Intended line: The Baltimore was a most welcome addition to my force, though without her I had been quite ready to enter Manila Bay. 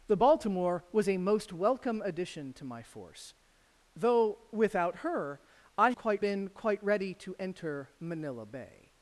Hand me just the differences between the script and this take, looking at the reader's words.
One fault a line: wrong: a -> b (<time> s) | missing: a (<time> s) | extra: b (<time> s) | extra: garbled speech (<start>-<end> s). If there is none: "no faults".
wrong: had -> quite (5.9 s)